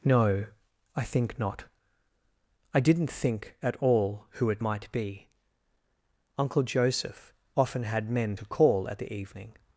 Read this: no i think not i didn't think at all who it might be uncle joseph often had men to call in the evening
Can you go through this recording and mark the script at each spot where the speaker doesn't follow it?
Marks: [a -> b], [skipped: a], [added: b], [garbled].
no i think not i didn't think at all who it might be uncle joseph often had men to call [in -> at] the evening